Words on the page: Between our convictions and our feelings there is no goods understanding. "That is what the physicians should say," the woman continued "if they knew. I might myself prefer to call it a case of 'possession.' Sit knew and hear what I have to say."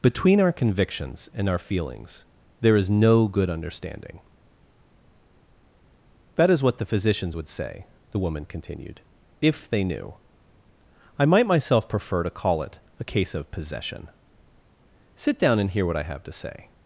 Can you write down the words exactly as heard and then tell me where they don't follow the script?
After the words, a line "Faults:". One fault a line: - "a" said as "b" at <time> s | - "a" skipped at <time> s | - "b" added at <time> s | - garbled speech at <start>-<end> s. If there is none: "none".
Between our convictions and our feelings there is no good understanding. "That is what the physicians would say," the woman continued "if they knew. I might myself prefer to call it a case of 'possession.' Sit down and hear what I have to say."
Faults:
- "goods" said as "good" at 3.3 s
- "should" said as "would" at 7.3 s
- "knew" said as "down" at 15.4 s